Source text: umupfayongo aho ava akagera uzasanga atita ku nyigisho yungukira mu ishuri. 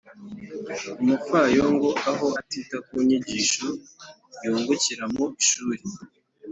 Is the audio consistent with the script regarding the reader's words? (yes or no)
no